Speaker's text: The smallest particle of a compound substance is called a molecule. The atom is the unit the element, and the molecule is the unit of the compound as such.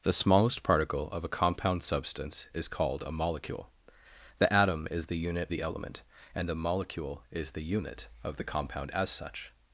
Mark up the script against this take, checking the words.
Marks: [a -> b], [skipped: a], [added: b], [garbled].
The smallest particle of a compound substance is called a molecule. The atom is the unit the element, and the molecule is the unit of the compound as such.